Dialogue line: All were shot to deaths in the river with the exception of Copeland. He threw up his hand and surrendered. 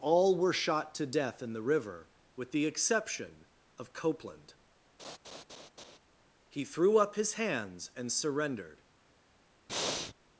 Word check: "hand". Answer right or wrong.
wrong